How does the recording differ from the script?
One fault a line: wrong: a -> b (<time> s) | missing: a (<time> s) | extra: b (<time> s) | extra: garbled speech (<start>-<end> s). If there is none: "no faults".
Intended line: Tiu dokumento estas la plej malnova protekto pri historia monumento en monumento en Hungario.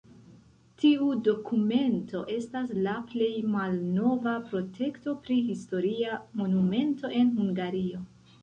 missing: monumento en (7.4 s)